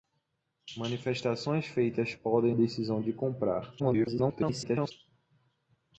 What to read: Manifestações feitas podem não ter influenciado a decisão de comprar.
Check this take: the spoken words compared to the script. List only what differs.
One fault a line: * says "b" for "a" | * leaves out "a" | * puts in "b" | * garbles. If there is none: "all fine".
* leaves out "não ter influenciado"
* garbles